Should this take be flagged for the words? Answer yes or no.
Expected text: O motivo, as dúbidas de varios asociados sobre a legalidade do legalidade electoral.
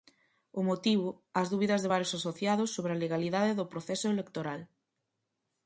yes